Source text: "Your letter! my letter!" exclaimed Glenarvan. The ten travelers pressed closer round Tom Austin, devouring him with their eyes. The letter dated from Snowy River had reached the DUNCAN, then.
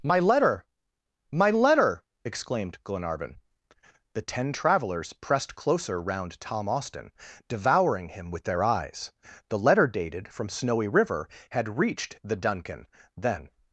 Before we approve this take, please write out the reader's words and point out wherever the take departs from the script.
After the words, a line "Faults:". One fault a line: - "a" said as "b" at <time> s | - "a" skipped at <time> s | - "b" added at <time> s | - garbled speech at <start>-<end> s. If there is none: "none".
"My letter! my letter!" exclaimed Glenarvan. The ten travelers pressed closer round Tom Austin, devouring him with their eyes. The letter dated from Snowy River had reached the DUNCAN, then.
Faults:
- "Your" said as "My" at 0.0 s